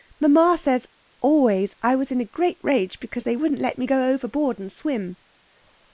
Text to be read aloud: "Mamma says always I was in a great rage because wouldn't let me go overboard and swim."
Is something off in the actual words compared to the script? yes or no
yes